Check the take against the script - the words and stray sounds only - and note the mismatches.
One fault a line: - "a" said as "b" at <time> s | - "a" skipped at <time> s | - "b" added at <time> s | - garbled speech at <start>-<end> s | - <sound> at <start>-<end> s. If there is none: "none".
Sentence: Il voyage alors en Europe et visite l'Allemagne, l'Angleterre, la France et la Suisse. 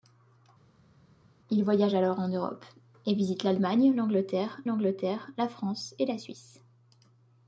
- "l'Angleterre" added at 4.6 s